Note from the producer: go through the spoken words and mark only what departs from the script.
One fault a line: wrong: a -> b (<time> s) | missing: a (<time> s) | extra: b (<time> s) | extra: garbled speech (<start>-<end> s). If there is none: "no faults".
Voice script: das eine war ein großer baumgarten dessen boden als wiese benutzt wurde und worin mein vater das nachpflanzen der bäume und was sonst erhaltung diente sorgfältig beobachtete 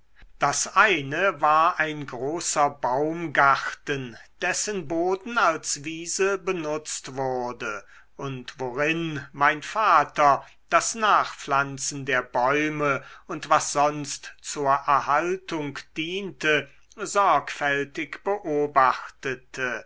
extra: zur (14.4 s)